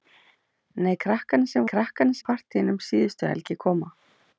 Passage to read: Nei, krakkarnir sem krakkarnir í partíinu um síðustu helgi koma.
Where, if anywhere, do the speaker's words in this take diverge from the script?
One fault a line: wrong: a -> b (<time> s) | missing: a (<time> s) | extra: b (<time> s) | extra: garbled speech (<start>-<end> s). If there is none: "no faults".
no faults